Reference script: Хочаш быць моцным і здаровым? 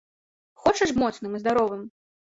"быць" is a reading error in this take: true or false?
true